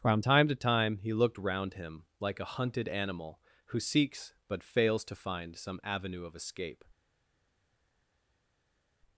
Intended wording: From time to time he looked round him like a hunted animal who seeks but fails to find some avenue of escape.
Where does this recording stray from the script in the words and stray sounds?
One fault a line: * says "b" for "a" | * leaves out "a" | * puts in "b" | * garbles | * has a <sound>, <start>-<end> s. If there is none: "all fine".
all fine